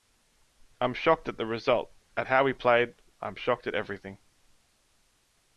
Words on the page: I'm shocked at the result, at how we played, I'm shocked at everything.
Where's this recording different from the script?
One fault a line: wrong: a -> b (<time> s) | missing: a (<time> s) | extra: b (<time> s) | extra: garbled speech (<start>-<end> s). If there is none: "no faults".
no faults